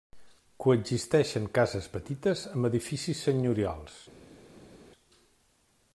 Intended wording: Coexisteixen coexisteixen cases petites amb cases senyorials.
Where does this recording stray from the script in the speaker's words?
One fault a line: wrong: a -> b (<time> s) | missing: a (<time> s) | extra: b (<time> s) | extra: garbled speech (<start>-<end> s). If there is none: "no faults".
missing: coexisteixen (1.4 s)
wrong: cases -> edificis (2.7 s)